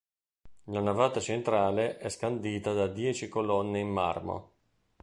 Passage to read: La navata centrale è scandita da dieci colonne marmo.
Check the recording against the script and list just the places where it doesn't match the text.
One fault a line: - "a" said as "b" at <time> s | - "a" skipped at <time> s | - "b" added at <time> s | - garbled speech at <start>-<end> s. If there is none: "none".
- "in" added at 3.8 s